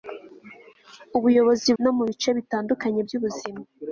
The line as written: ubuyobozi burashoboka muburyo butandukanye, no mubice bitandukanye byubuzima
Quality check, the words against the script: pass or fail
fail